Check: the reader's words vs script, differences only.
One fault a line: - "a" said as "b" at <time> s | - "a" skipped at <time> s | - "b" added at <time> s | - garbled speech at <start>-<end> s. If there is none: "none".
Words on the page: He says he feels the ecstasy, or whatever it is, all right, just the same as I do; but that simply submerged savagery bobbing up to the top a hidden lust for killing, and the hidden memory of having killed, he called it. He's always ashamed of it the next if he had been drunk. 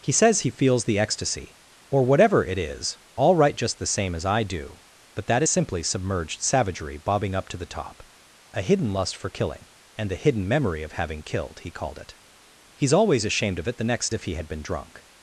none